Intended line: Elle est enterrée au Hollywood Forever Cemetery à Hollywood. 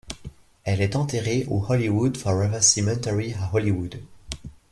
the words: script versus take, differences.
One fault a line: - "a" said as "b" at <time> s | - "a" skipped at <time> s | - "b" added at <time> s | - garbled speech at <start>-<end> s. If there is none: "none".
none